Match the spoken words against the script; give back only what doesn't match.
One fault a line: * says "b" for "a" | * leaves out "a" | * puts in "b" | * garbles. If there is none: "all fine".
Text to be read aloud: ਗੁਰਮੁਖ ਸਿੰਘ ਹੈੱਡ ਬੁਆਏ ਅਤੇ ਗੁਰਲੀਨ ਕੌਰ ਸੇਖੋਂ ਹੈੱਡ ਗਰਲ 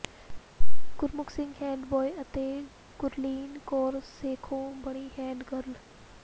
* puts in "ਬਣੀ"